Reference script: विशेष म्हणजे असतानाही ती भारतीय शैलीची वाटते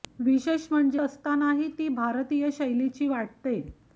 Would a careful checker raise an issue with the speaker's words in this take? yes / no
no